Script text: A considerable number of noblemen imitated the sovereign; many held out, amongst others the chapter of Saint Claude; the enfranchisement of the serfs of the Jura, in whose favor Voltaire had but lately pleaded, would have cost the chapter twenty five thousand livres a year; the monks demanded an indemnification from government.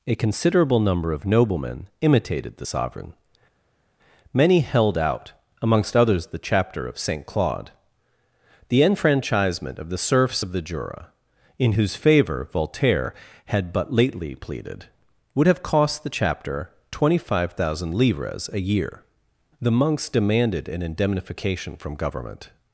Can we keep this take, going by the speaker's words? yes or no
yes